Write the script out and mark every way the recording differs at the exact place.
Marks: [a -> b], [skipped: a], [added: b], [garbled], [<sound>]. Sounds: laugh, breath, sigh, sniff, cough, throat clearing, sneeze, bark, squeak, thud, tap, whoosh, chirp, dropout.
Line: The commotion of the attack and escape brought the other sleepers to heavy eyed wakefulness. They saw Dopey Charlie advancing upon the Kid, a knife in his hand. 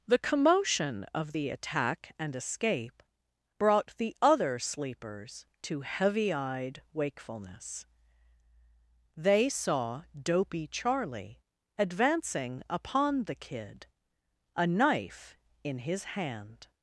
The commotion of the attack and escape brought the other sleepers to heavy eyed wakefulness. They saw Dopey Charlie advancing upon the Kid, a knife in his hand.